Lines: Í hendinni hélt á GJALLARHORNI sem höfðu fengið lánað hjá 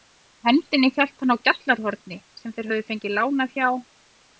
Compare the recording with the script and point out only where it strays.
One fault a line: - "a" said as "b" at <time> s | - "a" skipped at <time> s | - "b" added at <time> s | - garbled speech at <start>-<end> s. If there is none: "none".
- "hann" added at 1.2 s
- "þeir" added at 2.6 s